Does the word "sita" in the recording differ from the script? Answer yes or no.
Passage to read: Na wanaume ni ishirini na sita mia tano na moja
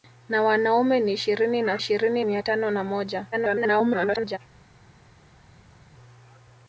yes